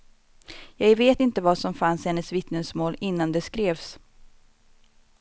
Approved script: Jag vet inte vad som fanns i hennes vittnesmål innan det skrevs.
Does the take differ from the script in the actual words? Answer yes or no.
no